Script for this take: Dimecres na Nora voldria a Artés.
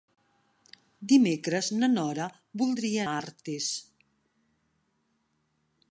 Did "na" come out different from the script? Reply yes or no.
no